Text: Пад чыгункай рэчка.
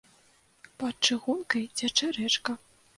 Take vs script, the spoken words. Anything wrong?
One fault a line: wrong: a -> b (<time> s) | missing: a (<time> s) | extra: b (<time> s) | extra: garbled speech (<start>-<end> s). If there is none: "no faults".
extra: цячэ (1.8 s)